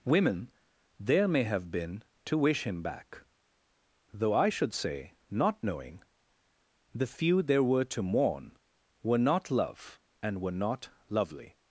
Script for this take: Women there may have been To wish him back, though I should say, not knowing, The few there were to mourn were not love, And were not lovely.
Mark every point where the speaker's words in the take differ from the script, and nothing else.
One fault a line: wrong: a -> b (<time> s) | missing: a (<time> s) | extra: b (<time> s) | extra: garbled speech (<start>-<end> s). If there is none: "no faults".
no faults